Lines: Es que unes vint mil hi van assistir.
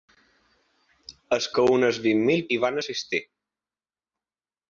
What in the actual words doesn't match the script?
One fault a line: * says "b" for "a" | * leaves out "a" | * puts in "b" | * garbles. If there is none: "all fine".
all fine